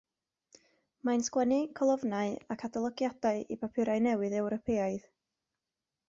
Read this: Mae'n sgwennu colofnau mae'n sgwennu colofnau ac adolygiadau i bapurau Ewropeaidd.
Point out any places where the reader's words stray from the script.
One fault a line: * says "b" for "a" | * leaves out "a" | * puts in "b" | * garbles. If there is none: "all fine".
* leaves out "mae'n sgwennu colofnau"
* puts in "newydd"